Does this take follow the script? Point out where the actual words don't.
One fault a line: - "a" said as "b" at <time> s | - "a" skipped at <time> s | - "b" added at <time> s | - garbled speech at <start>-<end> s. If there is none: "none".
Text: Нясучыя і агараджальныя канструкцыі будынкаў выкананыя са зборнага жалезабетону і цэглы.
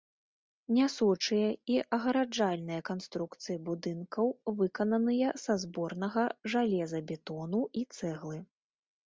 none